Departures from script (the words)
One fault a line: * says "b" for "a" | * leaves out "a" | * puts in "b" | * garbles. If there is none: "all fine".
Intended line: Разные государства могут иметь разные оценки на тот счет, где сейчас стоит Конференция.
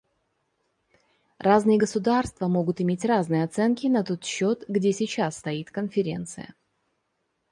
all fine